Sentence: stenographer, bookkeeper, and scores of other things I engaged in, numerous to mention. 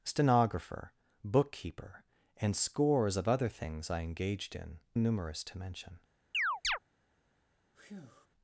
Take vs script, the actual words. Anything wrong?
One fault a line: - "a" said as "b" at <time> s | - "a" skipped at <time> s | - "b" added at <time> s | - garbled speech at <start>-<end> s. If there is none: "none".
none